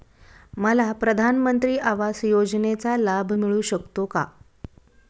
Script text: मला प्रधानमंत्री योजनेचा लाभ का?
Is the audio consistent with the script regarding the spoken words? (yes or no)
no